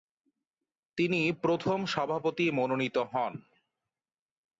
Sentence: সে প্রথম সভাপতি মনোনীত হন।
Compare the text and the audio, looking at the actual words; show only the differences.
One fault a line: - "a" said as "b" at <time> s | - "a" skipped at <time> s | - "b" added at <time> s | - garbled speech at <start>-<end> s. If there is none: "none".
- "সে" said as "তিনি" at 1.0 s